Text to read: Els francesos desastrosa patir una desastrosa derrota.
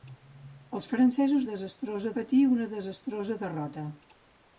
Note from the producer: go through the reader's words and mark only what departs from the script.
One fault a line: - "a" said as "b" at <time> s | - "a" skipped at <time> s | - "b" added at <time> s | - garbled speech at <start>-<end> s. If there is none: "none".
none